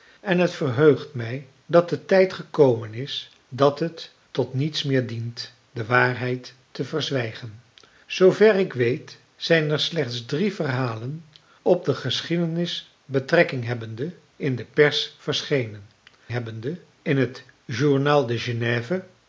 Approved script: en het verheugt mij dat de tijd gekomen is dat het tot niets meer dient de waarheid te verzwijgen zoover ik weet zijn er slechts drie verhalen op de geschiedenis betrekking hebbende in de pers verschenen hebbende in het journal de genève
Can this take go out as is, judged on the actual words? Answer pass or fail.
pass